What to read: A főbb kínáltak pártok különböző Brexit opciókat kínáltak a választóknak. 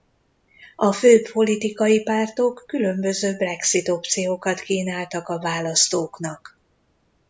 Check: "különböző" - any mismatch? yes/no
no